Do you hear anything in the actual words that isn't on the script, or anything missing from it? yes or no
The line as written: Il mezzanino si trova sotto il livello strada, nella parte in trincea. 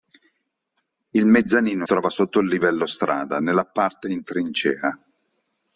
yes